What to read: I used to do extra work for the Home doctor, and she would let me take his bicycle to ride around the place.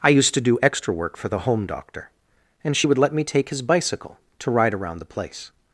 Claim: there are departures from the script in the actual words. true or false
false